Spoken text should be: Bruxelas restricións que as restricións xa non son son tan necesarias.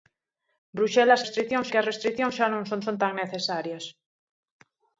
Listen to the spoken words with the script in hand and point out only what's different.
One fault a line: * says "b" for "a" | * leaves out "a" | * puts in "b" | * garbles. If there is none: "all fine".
all fine